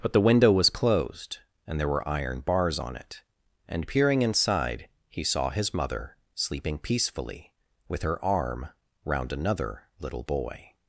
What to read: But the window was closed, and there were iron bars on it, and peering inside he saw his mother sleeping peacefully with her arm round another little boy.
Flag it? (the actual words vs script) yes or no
no